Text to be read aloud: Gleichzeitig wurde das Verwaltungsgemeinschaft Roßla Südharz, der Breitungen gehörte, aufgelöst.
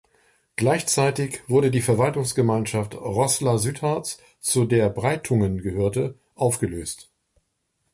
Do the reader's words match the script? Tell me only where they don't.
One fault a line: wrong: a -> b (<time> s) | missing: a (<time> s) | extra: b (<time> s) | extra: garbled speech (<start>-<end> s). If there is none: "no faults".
wrong: das -> die (1.7 s)
extra: zu (4.4 s)